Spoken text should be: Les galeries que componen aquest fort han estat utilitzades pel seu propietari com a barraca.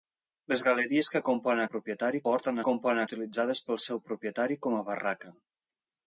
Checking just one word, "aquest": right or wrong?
wrong